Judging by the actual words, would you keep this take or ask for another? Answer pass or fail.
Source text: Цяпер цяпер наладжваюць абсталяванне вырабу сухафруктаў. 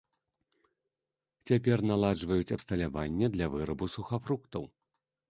fail